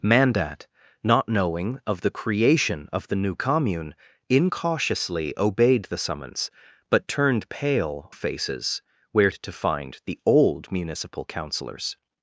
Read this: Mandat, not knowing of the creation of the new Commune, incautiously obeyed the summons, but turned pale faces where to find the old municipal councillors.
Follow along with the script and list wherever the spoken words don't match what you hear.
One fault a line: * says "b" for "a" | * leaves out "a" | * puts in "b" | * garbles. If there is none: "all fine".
all fine